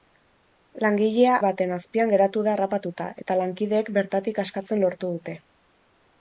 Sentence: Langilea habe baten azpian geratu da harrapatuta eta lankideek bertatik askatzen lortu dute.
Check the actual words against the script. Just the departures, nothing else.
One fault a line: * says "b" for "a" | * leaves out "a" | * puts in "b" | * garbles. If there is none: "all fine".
* leaves out "habe"